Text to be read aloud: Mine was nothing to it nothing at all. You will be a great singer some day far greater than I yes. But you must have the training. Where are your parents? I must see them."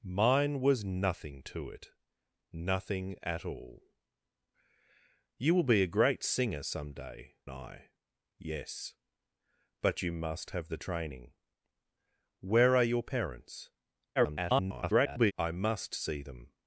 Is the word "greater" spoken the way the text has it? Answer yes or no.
no